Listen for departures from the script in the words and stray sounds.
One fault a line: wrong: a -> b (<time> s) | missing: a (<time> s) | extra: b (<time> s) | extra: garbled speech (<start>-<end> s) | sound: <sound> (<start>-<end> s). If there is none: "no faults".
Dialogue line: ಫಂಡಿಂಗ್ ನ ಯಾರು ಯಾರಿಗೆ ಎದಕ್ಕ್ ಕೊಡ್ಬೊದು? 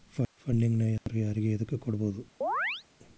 sound: dropout (1.0-1.1 s)
sound: chirp (2.4-2.8 s)